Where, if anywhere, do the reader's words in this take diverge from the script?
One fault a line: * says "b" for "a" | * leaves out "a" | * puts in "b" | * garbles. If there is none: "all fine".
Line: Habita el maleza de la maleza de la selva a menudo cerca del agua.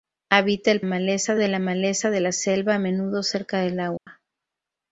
all fine